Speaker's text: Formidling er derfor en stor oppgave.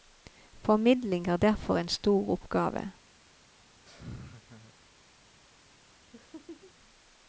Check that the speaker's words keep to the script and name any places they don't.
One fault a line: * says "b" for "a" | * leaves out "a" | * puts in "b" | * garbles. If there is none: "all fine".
all fine